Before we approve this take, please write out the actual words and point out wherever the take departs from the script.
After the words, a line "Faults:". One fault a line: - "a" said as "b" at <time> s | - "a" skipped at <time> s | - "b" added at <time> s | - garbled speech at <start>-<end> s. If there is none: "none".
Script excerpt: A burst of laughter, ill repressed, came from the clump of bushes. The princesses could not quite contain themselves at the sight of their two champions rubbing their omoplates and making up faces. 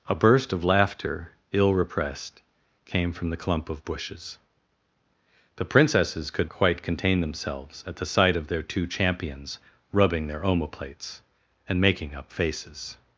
A burst of laughter, ill repressed, came from the clump of bushes. The princesses could quite contain themselves at the sight of their two champions rubbing their omoplates and making up faces.
Faults:
- "not" skipped at 6.5 s